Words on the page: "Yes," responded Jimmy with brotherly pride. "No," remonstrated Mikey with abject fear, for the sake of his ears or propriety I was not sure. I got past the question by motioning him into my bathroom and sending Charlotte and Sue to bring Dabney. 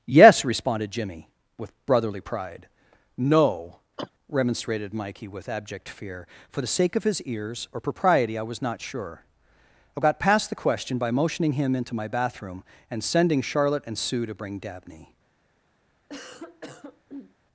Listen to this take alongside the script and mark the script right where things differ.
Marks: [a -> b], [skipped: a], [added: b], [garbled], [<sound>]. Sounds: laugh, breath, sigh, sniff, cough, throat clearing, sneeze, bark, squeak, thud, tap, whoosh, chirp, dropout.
"Yes," responded Jimmy with brotherly pride. "No," [cough] remonstrated Mikey with abject fear, for the sake of his ears or propriety I was not sure. I got past the question by motioning him into my bathroom and sending Charlotte and Sue to bring Dabney. [cough]